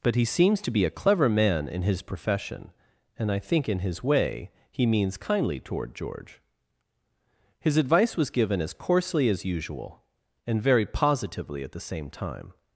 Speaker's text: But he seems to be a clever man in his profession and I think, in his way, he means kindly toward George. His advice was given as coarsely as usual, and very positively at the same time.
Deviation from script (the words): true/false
false